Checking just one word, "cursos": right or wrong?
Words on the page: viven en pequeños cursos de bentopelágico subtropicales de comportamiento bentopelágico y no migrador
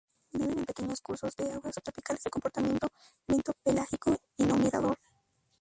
right